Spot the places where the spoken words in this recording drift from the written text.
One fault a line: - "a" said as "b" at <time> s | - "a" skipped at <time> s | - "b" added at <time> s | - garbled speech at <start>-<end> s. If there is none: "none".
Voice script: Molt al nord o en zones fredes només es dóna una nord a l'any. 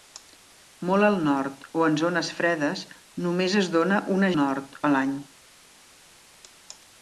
none